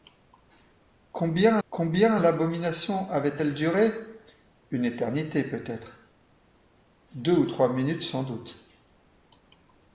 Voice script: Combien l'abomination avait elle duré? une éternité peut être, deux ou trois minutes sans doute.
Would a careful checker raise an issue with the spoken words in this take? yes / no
yes